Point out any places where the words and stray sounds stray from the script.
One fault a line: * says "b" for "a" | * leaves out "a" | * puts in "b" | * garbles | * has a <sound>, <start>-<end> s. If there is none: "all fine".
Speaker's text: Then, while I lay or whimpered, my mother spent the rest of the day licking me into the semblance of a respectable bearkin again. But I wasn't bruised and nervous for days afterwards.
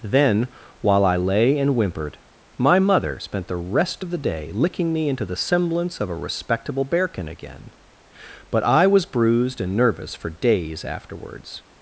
* says "and" for "or"
* says "was" for "wasn't"